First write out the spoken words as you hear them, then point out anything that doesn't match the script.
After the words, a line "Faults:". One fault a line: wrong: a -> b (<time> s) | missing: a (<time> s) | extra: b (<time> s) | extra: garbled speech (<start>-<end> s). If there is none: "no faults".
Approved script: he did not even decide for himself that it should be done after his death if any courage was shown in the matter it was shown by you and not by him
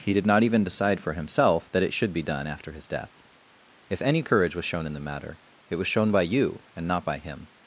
he did not even decide for himself that it should be done after his death if any courage was shown in the matter it was shown by you and not by him
Faults:
no faults